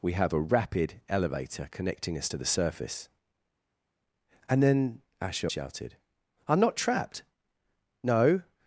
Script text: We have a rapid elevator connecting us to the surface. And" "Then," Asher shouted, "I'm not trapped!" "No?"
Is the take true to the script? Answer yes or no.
yes